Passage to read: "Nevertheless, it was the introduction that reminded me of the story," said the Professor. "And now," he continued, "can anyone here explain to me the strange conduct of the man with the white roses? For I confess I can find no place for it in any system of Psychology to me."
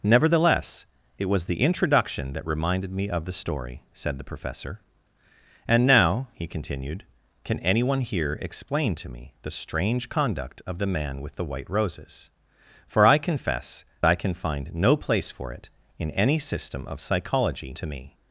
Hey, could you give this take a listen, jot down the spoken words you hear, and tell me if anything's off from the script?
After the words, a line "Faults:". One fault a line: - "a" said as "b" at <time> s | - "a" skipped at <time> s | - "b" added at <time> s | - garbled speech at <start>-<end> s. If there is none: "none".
"Nevertheless, it was the introduction that reminded me of the story," said the Professor. "And now," he continued, "can anyone here explain to me the strange conduct of the man with the white roses? For I confess I can find no place for it in any system of Psychology to me."
Faults:
none